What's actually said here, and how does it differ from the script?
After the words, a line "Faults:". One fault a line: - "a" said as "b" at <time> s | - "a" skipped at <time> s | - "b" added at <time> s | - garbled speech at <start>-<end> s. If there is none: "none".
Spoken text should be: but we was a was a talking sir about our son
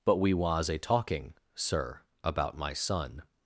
but we was a talking sir about my son
Faults:
- "was a" skipped at 0.8 s
- "our" said as "my" at 2.6 s